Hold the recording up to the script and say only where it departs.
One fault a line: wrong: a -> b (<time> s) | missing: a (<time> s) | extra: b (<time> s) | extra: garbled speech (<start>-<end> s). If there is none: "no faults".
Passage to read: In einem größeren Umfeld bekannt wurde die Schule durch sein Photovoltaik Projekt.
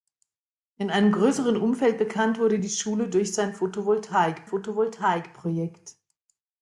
extra: Photovoltaik (4.4 s)